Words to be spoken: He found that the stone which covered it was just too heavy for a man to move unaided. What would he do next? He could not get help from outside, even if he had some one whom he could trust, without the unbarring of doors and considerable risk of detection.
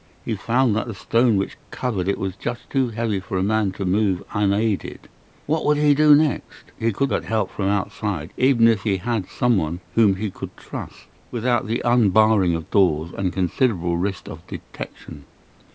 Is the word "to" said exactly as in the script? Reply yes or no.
yes